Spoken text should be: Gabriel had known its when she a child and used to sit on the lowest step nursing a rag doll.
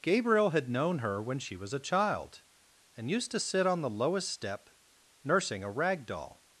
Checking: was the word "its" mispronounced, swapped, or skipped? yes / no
yes